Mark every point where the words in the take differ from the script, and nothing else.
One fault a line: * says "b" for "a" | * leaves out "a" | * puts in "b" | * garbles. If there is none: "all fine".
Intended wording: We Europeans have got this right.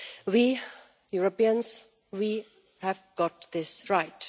all fine